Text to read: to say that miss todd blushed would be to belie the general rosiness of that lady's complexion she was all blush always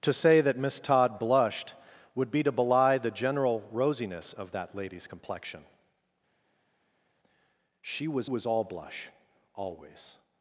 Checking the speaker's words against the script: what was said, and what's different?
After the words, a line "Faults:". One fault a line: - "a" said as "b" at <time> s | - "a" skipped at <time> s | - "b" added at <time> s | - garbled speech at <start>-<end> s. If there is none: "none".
to say that miss todd blushed would be to belie the general rosiness of that lady's complexion she was was all blush always
Faults:
- "was" added at 8.2 s